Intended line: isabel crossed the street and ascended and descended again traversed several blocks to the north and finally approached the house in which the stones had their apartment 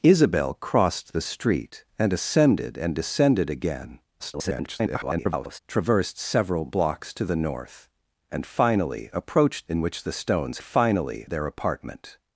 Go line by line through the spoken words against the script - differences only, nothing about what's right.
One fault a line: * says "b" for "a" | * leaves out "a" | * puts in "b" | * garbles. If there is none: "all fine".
* garbles
* leaves out "the house"
* says "finally" for "had"